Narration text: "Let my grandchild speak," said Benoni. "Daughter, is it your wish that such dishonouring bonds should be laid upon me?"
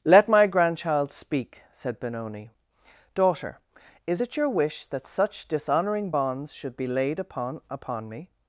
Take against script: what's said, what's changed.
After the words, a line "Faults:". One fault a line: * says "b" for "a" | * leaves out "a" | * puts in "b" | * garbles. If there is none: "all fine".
"Let my grandchild speak," said Benoni. "Daughter, is it your wish that such dishonouring bonds should be laid upon upon me?"
Faults:
* puts in "upon"